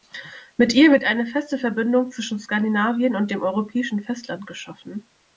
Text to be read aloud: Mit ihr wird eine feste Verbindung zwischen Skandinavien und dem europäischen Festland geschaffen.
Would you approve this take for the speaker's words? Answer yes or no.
yes